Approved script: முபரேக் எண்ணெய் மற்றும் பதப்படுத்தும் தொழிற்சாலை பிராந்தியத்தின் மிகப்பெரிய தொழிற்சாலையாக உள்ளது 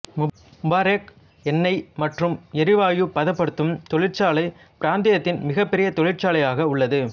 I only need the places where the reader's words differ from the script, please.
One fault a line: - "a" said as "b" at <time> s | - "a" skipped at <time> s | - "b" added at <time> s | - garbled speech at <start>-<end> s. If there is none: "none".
- "எரிவாயு" added at 2.5 s